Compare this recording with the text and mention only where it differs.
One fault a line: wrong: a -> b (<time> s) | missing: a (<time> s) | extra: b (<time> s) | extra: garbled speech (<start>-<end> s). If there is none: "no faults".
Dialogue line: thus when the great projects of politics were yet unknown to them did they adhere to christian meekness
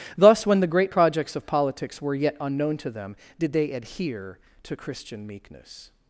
no faults